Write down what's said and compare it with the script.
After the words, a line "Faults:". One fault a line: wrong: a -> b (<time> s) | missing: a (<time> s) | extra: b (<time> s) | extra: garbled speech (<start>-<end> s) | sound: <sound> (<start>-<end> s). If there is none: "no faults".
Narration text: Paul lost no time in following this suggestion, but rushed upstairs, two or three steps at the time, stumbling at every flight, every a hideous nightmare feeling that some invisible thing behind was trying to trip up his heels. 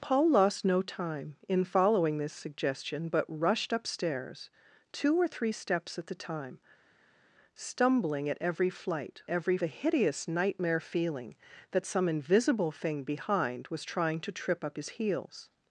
Paul lost no time in following this suggestion, but rushed upstairs, two or three steps at the time, stumbling at every flight, every a hideous nightmare feeling that some invisible thing behind was trying to trip up his heels.
Faults:
no faults